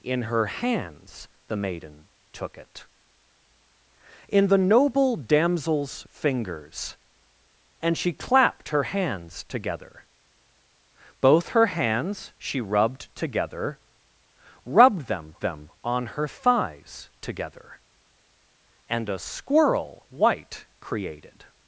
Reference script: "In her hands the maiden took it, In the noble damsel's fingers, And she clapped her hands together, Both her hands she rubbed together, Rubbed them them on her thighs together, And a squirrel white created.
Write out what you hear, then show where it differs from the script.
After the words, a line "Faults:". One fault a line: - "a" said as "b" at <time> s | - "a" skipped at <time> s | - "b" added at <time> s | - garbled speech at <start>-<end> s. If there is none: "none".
"In her hands the maiden took it, In the noble damsel's fingers, And she clapped her hands together, Both her hands she rubbed together, Rubbed them them on her thighs together, And a squirrel white created.
Faults:
none